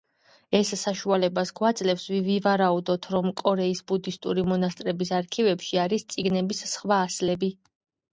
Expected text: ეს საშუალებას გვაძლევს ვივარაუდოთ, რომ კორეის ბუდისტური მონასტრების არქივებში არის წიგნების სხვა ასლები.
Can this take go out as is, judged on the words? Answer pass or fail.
pass